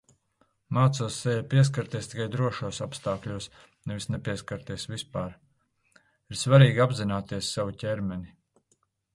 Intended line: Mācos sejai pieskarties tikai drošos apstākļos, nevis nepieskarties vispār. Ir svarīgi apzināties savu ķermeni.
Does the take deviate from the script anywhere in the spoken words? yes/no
no